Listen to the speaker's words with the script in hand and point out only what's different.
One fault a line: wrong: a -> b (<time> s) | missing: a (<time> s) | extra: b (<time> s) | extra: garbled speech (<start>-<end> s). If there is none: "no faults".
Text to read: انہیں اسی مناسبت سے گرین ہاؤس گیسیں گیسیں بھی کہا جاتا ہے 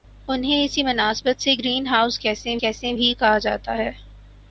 no faults